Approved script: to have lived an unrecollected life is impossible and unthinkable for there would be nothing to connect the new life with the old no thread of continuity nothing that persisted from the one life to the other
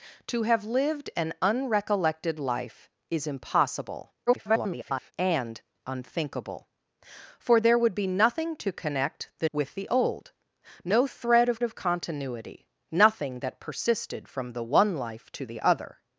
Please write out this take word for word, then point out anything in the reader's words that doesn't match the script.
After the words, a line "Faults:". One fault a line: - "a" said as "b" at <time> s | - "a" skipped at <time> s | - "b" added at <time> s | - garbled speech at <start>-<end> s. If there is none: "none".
to have lived an unrecollected life is impossible [garbled] and unthinkable for there would be nothing to connect the with the old no thread of of continuity nothing that persisted from the one life to the other
Faults:
- garbled speech at 4.3-5.1 s
- "new life" skipped at 9.5 s
- "of" added at 11.6 s